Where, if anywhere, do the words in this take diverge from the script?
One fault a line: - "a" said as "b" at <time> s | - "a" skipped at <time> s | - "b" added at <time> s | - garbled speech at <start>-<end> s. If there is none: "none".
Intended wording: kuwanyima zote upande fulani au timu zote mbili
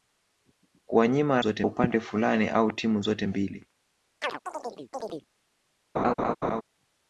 none